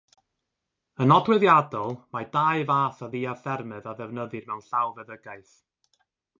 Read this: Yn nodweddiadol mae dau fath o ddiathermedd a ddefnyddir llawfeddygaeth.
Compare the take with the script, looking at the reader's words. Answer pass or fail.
fail